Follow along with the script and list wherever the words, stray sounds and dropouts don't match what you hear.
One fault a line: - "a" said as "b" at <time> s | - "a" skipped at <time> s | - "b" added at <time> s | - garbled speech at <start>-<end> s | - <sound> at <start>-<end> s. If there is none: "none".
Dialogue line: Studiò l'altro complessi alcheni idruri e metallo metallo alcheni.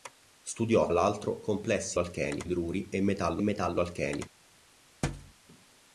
- thud at 5.0-5.3 s